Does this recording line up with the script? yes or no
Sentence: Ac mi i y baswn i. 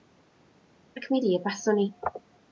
yes